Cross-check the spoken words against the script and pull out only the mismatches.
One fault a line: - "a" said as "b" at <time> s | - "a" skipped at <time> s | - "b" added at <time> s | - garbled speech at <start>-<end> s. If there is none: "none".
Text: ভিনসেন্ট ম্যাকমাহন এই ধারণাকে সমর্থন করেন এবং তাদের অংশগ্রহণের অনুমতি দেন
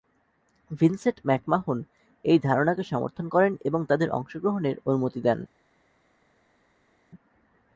none